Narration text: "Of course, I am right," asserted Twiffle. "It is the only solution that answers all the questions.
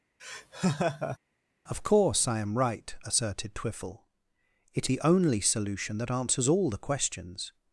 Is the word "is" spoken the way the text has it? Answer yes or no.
no